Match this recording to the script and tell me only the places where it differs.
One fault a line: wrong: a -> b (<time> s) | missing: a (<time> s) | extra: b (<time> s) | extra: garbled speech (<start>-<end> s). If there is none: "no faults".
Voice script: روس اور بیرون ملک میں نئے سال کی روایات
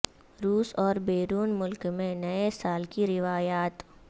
no faults